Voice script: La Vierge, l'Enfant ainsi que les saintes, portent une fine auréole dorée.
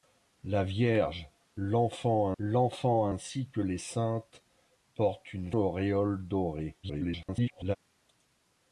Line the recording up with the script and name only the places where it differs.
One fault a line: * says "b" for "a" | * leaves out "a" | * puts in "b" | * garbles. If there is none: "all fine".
* puts in "l'Enfant"
* leaves out "fine"
* garbles